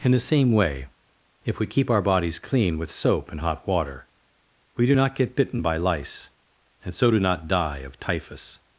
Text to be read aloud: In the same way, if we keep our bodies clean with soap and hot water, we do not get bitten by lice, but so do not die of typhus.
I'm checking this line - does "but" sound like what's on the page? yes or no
no